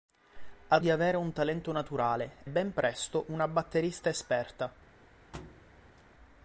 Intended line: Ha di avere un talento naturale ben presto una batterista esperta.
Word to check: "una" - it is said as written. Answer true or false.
true